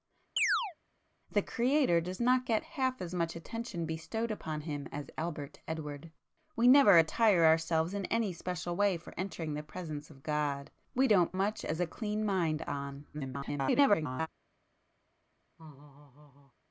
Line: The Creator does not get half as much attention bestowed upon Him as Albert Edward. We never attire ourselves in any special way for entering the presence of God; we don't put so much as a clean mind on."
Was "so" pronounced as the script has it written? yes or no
no